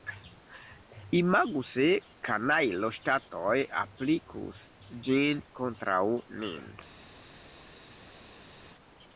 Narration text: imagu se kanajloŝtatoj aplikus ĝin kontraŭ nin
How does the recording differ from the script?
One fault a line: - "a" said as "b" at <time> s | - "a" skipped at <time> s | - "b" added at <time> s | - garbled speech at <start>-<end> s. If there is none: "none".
none